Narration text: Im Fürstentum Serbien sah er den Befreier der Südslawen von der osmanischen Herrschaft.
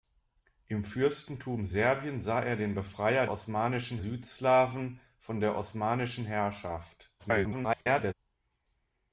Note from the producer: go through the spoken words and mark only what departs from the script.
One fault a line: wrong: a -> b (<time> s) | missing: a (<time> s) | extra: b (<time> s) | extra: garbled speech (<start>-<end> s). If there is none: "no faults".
wrong: der -> osmanischen (3.3 s)
extra: garbled speech (7.2-8.1 s)